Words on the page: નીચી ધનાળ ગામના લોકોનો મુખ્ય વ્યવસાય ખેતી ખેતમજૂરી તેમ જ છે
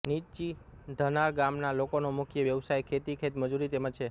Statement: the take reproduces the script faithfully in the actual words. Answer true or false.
true